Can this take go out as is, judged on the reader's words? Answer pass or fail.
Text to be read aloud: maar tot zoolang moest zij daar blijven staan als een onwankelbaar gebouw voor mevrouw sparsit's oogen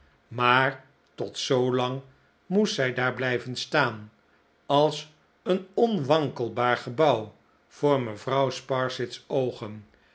pass